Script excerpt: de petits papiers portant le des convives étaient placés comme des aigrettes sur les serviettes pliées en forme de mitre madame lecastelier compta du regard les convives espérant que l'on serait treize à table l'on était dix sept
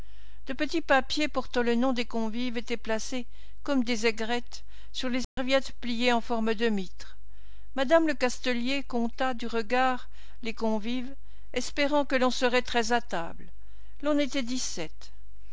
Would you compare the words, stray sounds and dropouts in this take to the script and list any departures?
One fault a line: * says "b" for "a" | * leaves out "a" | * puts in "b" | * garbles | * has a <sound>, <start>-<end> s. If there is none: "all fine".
* puts in "nom"
* has a dropout, 5.2-5.4 s